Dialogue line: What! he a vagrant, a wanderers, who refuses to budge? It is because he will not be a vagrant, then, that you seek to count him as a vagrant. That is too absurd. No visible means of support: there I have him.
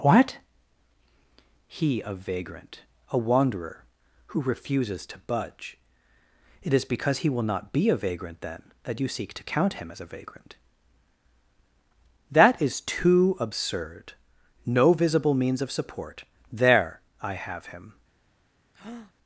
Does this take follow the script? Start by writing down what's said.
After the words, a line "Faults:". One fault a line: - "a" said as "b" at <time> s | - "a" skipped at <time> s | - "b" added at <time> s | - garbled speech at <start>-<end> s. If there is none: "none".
What! he a vagrant, a wanderer, who refuses to budge? It is because he will not be a vagrant, then, that you seek to count him as a vagrant. That is too absurd. No visible means of support: there I have him.
Faults:
- "wanderers" said as "wanderer" at 3.2 s